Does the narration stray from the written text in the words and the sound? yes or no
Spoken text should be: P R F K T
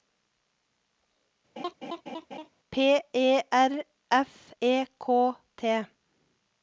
yes